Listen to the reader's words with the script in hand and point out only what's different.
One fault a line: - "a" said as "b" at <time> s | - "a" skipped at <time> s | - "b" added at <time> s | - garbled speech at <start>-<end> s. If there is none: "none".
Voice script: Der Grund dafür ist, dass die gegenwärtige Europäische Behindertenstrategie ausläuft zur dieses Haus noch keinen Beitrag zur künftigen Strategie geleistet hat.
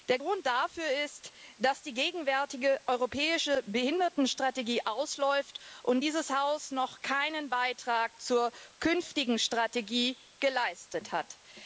- "zur" said as "und" at 5.8 s